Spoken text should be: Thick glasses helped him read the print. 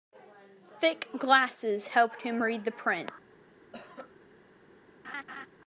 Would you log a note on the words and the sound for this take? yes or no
yes